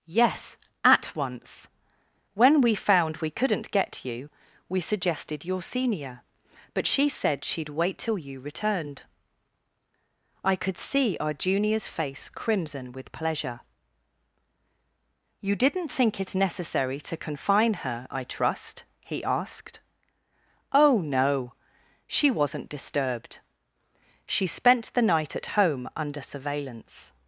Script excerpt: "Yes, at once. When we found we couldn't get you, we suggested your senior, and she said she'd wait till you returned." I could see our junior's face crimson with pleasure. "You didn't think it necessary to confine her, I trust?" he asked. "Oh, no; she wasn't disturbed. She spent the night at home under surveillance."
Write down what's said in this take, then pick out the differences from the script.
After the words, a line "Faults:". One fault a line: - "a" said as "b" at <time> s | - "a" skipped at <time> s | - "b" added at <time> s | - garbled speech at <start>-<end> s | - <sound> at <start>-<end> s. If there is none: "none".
"Yes, at once. When we found we couldn't get you, we suggested your senior, but she said she'd wait till you returned." I could see our junior's face crimson with pleasure. "You didn't think it necessary to confine her, I trust?" he asked. "Oh, no; she wasn't disturbed. She spent the night at home under surveillance."
Faults:
- "and" said as "but" at 6.7 s